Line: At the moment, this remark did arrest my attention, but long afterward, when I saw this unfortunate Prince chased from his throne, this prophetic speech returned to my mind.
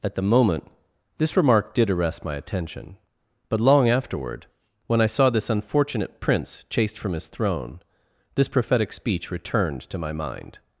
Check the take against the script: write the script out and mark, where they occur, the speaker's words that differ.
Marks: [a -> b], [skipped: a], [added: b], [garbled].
At the moment, this remark did arrest my attention, but long afterward, when I saw this unfortunate Prince chased from his throne, this prophetic speech returned to my mind.